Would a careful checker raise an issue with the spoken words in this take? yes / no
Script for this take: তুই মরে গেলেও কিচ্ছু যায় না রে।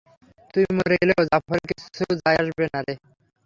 yes